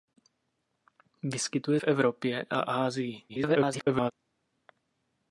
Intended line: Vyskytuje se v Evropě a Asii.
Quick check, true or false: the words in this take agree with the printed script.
false